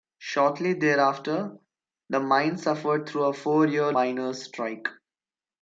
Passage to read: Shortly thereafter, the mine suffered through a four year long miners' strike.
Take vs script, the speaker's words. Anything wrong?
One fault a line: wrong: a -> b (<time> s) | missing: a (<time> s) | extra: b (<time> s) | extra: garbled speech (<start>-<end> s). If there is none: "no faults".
missing: long (3.9 s)